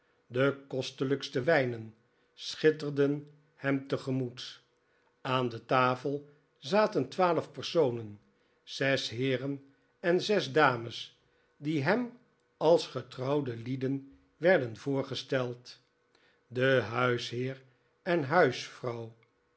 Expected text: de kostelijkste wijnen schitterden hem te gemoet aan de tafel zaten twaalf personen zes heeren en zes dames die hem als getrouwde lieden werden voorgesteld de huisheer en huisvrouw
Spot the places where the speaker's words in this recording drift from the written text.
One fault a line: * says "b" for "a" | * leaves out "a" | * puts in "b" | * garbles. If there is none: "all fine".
all fine